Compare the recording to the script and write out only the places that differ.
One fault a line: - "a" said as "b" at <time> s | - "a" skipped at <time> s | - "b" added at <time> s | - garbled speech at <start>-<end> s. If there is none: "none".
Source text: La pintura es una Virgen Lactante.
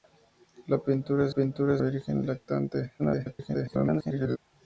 - "una" said as "pintura" at 1.3 s
- garbled speech at 3.0-4.4 s